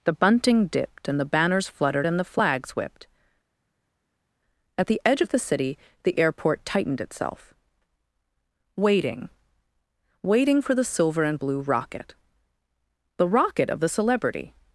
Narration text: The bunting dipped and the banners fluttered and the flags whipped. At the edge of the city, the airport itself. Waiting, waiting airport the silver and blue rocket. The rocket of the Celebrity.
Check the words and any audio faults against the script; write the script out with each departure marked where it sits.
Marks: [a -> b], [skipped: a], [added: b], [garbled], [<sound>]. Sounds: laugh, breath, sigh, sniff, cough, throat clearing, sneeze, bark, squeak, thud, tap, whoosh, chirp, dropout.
The bunting dipped and the banners fluttered and the flags whipped. At the edge of the city, the airport [added: tightened] itself. Waiting, waiting [airport -> for] the silver and blue rocket. The rocket of the Celebrity.